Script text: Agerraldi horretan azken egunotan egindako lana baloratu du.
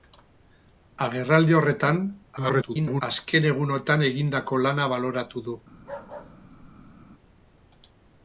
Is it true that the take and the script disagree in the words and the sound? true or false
true